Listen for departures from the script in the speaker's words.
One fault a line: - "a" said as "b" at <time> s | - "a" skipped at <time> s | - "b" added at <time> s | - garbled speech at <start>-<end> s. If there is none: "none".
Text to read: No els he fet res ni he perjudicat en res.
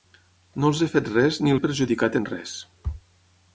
none